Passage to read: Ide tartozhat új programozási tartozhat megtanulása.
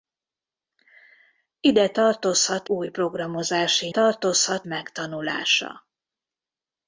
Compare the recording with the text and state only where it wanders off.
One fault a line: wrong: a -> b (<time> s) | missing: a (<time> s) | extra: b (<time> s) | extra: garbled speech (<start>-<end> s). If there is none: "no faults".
no faults